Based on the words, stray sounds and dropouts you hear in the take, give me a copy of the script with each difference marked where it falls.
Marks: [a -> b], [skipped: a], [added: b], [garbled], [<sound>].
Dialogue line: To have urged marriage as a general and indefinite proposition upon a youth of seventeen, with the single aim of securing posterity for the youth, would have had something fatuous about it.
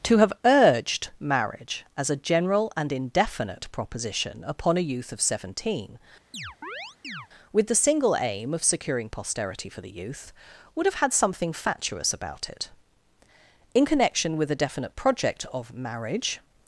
To have urged marriage as a general and indefinite proposition upon a youth of seventeen, [chirp] with the single aim of securing posterity for the youth, would have had something fatuous about it. [added: In connection with a definite project of marriage]